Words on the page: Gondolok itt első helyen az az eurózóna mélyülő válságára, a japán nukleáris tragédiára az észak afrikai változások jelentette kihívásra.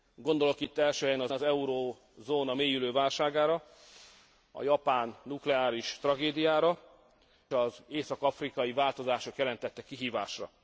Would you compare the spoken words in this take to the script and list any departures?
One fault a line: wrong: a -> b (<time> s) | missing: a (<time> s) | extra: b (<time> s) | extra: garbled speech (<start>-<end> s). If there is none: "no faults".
no faults